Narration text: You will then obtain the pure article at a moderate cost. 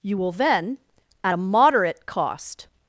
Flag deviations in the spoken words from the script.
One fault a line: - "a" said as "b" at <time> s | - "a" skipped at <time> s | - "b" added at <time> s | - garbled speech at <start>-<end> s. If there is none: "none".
- "obtain the pure article" skipped at 0.8 s